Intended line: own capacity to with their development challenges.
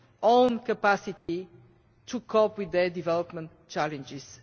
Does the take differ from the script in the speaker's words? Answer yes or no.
yes